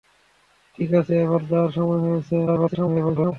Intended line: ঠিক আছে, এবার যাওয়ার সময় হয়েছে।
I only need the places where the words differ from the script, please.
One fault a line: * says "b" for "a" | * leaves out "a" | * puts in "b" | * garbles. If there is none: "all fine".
* garbles